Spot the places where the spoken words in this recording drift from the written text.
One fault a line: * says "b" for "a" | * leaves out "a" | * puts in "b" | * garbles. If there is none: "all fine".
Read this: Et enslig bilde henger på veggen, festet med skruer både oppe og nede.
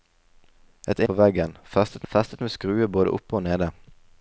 * leaves out "enslig bilde henger"
* puts in "festet"